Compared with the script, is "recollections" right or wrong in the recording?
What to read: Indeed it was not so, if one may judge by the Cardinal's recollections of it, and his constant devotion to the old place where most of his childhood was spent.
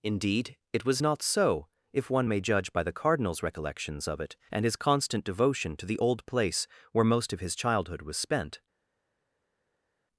right